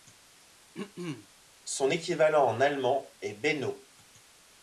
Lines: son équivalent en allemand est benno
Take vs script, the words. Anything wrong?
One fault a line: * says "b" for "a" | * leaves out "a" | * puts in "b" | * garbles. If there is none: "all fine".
all fine